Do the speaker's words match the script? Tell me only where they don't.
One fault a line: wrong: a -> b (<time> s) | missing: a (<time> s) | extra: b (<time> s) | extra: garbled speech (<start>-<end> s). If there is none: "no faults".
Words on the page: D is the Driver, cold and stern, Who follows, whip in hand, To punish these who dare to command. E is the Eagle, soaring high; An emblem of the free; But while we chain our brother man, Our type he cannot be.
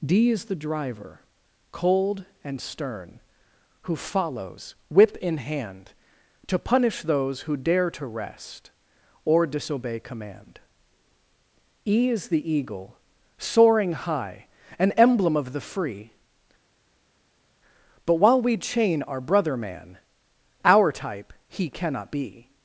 wrong: these -> those (7.0 s)
extra: rest Or disobey (8.1 s)